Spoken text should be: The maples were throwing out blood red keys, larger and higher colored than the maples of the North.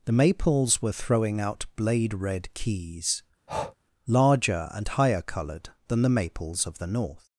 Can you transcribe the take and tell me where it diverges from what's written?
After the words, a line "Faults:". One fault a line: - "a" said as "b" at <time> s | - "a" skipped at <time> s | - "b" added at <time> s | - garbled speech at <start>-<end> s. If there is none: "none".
The maples were throwing out blade red keys, larger and higher colored than the maples of the North.
Faults:
- "blood" said as "blade" at 1.8 s